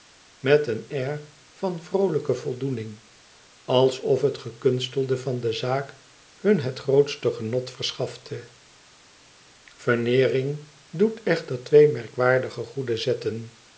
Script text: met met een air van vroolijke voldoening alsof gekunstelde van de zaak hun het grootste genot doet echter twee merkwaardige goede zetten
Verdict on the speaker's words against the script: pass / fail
fail